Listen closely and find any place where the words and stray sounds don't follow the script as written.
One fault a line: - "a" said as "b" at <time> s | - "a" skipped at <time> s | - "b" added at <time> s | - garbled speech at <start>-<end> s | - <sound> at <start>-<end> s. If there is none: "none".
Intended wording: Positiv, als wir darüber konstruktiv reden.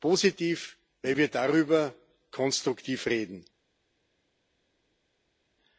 - "als" said as "weil" at 1.0 s